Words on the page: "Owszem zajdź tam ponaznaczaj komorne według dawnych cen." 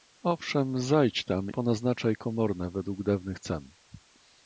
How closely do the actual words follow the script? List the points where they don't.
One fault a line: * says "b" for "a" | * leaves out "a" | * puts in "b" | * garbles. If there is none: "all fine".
all fine